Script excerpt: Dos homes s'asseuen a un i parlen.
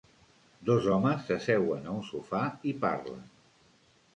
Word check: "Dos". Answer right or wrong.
right